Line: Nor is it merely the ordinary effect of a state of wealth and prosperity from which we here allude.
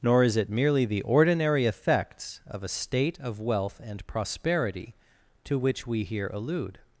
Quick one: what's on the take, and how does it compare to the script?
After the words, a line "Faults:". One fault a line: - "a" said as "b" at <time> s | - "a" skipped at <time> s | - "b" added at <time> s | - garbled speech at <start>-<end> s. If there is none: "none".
Nor is it merely the ordinary effects of a state of wealth and prosperity to which we here allude.
Faults:
- "effect" said as "effects" at 1.6 s
- "from" said as "to" at 5.5 s